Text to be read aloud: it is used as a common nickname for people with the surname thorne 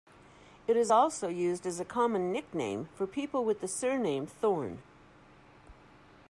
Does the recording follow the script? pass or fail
fail